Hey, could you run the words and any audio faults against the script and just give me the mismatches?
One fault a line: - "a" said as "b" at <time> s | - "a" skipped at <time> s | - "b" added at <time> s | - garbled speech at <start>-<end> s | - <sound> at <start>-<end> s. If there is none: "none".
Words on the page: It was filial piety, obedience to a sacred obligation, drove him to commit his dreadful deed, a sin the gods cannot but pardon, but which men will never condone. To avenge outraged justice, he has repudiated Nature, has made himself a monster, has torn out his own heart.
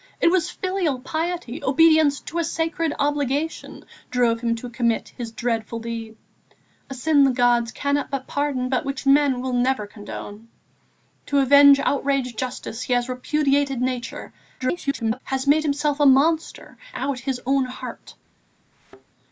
- garbled speech at 14.6-15.2 s
- "has torn" skipped at 16.8 s
- thud at 18.7-19.1 s